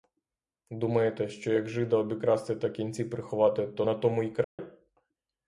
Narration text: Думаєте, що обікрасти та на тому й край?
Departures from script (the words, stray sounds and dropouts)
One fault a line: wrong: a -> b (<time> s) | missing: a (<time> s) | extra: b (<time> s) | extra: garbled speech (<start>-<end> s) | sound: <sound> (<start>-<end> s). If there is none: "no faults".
extra: як жида (1.5 s)
extra: кінці приховати то (2.7 s)
sound: dropout (4.4-4.6 s)